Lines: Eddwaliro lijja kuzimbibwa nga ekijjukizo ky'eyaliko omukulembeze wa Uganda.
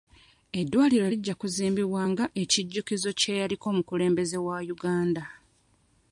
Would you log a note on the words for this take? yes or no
no